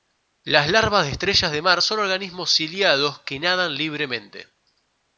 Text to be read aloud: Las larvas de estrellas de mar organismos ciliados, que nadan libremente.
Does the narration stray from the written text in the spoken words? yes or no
yes